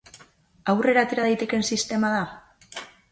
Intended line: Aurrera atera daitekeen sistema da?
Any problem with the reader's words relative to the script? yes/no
no